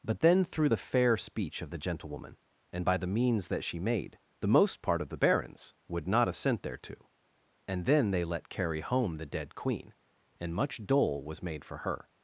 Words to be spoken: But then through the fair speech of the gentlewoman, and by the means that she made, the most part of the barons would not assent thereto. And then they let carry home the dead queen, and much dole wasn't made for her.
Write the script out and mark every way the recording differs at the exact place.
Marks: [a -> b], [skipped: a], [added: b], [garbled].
But then through the fair speech of the gentlewoman, and by the means that she made, the most part of the barons would not assent thereto. And then they let carry home the dead queen, and much dole [wasn't -> was] made for her.